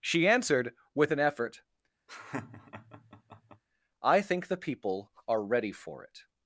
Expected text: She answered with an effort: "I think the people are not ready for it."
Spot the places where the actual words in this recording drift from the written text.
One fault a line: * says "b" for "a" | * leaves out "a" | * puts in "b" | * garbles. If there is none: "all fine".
* leaves out "not"